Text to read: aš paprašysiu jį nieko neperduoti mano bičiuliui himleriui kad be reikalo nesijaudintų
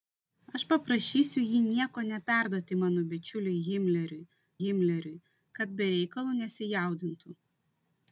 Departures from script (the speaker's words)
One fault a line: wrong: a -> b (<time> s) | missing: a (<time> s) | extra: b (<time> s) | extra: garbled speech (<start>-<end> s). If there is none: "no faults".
extra: himleriui (4.6 s)